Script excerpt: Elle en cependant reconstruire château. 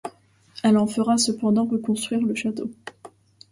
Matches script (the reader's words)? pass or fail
fail